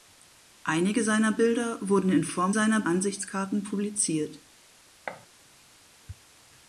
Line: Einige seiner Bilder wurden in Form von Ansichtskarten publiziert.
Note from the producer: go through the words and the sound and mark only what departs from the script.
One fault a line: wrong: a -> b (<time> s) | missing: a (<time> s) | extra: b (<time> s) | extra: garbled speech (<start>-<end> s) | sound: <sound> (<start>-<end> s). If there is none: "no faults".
wrong: von -> seiner (2.5 s)
sound: thud (5.1-5.3 s)